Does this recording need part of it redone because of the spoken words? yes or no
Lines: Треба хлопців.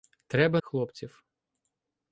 no